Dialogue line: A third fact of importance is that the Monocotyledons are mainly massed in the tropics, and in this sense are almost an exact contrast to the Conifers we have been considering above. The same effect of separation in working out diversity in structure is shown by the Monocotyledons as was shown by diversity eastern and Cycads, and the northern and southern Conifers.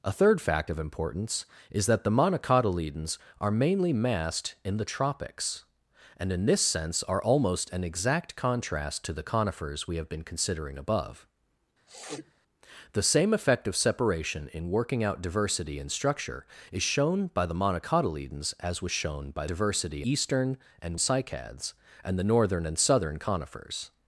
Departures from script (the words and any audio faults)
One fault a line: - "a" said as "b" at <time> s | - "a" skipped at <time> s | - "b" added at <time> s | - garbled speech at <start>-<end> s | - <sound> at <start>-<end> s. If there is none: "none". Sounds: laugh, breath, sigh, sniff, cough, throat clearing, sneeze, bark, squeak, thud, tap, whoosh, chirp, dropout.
- sniff at 11.9-12.3 s